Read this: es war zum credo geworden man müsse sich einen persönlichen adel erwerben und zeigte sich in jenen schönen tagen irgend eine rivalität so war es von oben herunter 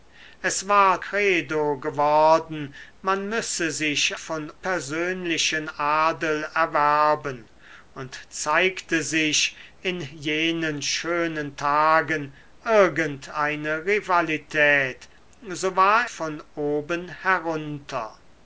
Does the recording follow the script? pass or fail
fail